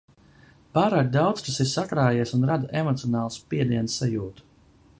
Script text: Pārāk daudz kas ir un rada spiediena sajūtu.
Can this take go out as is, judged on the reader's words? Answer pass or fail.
fail